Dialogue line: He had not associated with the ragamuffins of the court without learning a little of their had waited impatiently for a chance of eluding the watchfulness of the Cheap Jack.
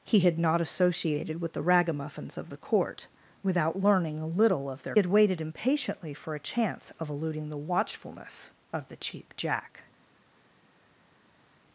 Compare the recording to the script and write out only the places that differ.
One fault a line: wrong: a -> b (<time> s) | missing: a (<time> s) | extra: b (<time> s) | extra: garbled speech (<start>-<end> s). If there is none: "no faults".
no faults